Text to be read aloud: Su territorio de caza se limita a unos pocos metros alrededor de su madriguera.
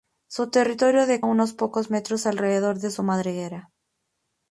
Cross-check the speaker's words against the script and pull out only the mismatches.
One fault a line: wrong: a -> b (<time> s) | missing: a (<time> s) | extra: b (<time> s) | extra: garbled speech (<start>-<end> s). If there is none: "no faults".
missing: caza se limita (1.2 s)